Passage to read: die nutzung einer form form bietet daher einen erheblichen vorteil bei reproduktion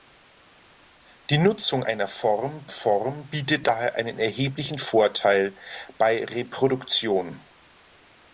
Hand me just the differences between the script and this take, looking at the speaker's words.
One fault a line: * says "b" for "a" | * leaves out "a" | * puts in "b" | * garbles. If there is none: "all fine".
all fine